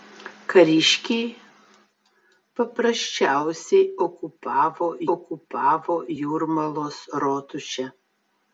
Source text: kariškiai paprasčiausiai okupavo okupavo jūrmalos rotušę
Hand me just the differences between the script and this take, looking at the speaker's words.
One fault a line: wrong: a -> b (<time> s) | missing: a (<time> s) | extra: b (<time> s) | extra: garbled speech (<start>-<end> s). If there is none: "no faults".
no faults